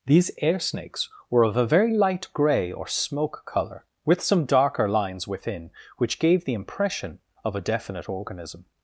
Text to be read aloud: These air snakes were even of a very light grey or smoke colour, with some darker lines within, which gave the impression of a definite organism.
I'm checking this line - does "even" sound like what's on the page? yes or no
no